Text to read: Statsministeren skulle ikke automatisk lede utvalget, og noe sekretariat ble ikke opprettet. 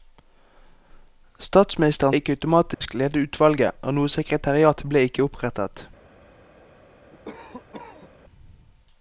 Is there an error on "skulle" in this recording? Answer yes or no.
yes